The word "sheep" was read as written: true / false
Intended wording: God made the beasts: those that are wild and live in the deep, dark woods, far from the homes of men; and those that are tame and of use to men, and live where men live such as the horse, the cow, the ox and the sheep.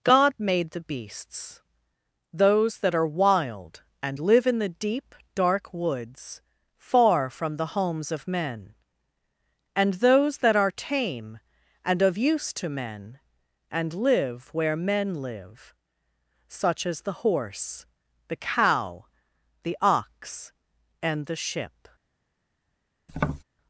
false